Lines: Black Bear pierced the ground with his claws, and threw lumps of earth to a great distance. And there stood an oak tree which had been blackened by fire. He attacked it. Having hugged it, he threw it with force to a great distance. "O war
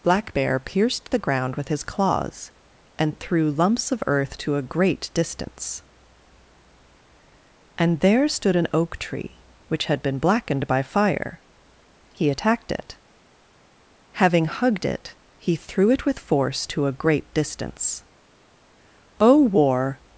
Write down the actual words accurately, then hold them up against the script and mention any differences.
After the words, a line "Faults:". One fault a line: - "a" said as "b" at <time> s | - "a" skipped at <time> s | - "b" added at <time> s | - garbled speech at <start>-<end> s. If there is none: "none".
Black Bear pierced the ground with his claws, and threw lumps of earth to a great distance. And there stood an oak tree which had been blackened by fire. He attacked it. Having hugged it, he threw it with force to a great distance. "O war
Faults:
none